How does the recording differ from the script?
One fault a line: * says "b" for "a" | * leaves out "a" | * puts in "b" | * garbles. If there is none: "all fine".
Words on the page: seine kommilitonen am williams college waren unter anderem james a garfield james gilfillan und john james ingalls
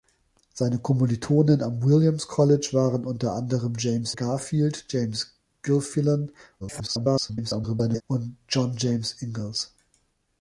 * leaves out "a"
* garbles